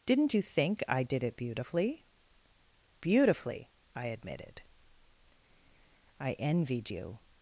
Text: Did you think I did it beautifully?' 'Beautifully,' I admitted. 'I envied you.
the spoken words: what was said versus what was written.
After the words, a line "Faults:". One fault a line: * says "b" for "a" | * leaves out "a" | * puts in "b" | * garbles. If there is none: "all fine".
Didn't you think I did it beautifully?' 'Beautifully,' I admitted. 'I envied you.
Faults:
* says "Didn't" for "Did"